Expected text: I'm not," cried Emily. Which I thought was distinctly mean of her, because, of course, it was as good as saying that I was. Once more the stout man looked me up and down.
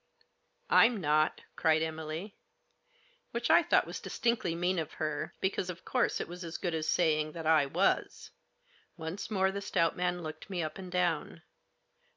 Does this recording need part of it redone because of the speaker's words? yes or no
no